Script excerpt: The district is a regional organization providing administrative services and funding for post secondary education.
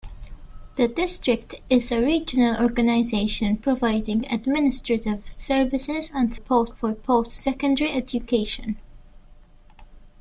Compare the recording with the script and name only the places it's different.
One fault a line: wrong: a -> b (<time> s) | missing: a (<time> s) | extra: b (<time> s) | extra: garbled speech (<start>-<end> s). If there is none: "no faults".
wrong: funding -> post (6.3 s)